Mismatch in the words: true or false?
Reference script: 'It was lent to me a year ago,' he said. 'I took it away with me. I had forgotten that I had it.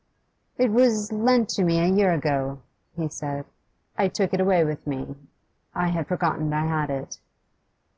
true